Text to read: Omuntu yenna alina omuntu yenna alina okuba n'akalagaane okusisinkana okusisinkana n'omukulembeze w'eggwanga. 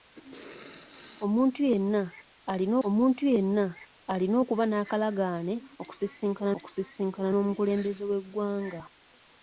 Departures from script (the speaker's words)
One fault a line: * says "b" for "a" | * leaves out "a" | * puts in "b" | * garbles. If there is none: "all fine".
all fine